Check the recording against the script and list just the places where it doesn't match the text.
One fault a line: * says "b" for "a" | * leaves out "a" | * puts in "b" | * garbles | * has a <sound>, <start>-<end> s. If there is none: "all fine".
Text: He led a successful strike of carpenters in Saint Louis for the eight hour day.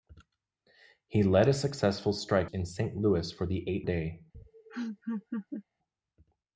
* leaves out "of carpenters"
* leaves out "hour"
* has a laugh, 4.3-5.6 s